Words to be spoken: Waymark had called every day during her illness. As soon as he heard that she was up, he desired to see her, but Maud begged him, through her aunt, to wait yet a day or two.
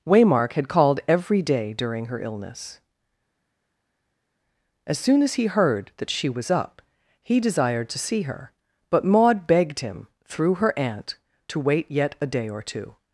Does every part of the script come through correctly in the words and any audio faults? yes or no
yes